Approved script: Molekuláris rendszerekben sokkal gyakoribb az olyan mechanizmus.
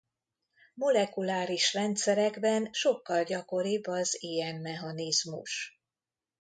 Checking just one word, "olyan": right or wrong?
wrong